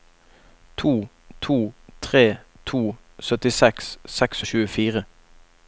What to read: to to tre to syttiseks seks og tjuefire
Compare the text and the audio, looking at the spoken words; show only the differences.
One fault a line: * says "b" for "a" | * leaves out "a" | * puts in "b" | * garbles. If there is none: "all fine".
all fine